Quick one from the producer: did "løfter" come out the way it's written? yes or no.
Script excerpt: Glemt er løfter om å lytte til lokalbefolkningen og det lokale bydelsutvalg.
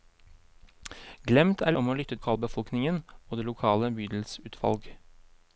no